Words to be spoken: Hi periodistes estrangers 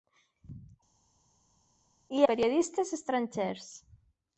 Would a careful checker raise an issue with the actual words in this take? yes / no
no